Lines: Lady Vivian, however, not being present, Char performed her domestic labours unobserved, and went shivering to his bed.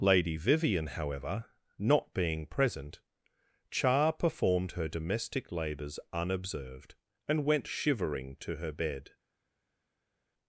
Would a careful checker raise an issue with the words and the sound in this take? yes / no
yes